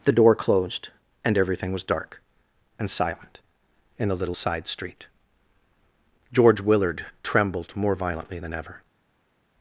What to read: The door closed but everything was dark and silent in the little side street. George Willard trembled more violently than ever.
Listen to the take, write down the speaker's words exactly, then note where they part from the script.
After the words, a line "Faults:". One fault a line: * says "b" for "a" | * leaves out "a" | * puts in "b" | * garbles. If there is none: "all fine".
The door closed and everything was dark and silent in the little side street. George Willard trembled more violently than ever.
Faults:
* says "and" for "but"